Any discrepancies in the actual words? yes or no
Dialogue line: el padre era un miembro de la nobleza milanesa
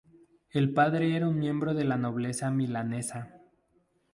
no